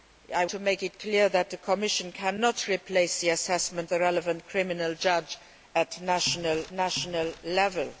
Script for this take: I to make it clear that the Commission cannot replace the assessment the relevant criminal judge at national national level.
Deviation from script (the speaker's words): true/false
false